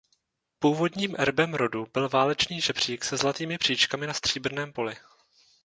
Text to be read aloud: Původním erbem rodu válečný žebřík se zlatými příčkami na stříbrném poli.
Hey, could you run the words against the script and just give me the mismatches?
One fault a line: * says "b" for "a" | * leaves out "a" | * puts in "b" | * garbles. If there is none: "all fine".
* puts in "byl"